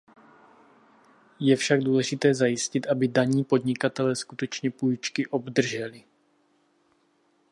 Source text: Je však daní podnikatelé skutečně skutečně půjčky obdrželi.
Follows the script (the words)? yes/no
no